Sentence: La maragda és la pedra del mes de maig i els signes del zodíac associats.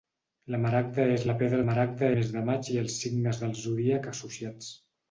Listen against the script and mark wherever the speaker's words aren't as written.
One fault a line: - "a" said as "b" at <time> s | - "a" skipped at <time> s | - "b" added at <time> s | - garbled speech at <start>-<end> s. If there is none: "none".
- "del" said as "maragda" at 1.7 s